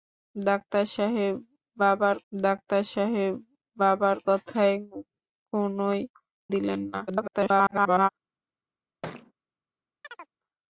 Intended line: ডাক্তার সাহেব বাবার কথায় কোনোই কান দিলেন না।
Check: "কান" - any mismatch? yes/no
yes